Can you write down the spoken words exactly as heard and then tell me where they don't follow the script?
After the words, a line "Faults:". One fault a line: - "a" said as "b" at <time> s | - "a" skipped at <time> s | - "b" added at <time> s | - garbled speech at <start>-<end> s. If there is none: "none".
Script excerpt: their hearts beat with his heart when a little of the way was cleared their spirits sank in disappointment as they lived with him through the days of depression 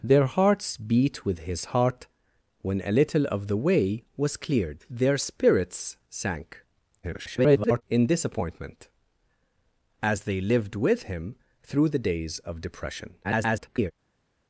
their hearts beat with his heart when a little of the way was cleared their spirits sank [garbled] in disappointment as they lived with him through the days of depression [garbled]
Faults:
- garbled speech at 7.0-7.8 s
- garbled speech at 13.2-13.9 s